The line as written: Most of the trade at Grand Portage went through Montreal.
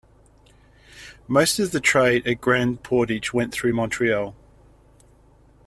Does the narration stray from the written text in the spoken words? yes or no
no